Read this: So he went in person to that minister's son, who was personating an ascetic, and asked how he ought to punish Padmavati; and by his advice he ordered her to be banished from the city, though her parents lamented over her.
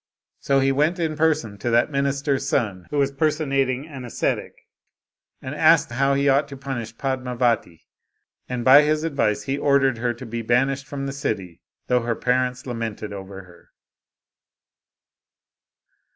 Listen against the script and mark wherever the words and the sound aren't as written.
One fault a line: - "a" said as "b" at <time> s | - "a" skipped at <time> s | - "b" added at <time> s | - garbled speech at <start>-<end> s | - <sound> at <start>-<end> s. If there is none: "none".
none